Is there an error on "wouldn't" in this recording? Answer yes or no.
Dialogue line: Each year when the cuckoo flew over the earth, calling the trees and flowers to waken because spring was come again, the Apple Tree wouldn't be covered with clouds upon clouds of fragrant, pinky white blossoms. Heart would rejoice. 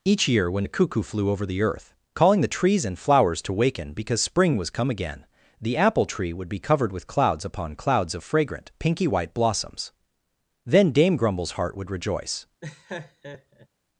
yes